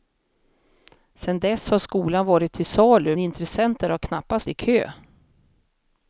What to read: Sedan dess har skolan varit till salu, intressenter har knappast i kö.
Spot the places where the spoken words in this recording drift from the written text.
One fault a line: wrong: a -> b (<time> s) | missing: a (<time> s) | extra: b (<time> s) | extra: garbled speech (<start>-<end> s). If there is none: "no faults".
no faults